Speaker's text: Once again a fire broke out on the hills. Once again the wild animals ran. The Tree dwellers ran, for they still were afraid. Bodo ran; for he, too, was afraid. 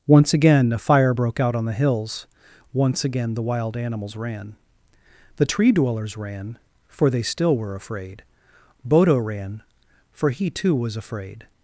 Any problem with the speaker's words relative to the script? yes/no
no